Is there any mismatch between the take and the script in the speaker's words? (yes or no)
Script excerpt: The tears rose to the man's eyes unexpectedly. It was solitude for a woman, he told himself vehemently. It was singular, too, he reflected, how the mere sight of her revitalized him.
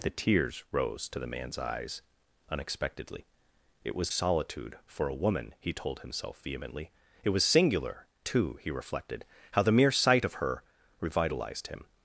no